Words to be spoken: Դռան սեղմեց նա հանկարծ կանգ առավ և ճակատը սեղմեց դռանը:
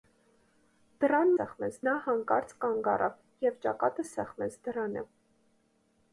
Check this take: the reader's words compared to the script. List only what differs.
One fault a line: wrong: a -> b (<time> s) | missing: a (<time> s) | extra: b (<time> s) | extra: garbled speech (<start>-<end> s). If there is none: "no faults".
no faults